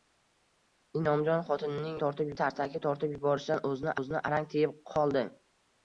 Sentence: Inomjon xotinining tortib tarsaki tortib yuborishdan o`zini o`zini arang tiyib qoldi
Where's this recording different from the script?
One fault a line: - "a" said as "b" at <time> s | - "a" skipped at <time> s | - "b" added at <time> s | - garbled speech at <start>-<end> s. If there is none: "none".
none